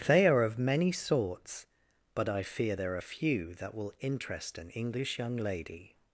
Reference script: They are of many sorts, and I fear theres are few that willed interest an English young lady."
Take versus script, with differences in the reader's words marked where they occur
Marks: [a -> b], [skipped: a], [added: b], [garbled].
They are of many sorts, [and -> but] I fear [theres -> there] are few that [willed -> will] interest an English young lady."